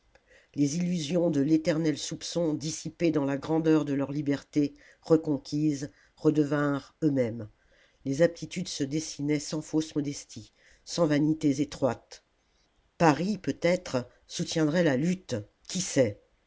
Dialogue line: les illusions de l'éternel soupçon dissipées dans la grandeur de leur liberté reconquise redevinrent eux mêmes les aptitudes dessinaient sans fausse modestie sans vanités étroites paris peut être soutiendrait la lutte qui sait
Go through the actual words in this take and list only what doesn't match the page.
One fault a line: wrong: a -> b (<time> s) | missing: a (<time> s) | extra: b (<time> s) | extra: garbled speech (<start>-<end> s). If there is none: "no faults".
extra: se (8.7 s)